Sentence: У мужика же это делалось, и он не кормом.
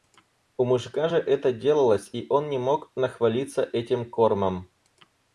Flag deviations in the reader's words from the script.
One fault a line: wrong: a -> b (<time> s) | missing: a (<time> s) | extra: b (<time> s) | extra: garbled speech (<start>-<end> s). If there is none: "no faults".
extra: мог нахвалиться этим (2.6 s)